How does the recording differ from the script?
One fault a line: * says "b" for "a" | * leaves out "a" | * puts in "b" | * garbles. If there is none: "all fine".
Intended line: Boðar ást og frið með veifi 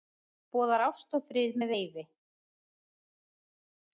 all fine